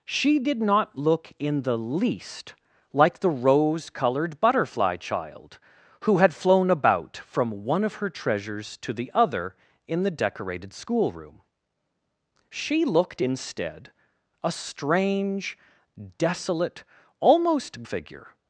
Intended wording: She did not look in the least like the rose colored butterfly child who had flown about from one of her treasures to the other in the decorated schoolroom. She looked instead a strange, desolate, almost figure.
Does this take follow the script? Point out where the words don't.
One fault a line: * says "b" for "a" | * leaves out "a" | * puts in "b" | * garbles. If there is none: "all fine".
all fine